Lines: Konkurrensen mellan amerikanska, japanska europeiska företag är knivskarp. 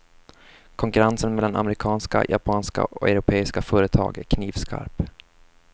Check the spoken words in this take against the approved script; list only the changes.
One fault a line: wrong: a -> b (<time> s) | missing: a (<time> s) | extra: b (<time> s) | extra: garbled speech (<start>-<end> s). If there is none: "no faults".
extra: och (2.8 s)